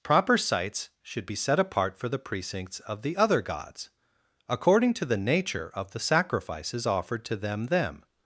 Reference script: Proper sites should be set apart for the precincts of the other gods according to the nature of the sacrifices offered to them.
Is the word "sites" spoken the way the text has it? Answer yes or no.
yes